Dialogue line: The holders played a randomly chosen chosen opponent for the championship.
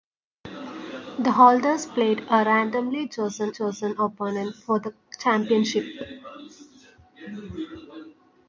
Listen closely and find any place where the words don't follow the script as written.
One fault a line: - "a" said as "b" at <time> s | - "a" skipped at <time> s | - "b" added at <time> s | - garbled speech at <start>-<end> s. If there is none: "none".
none